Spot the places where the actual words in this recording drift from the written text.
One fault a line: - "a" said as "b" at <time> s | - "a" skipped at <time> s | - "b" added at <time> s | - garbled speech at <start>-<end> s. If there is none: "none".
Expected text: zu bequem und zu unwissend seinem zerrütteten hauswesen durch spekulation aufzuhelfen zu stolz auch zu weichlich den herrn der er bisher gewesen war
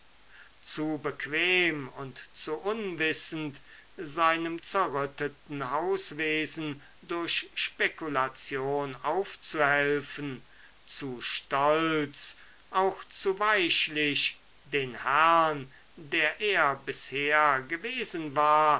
none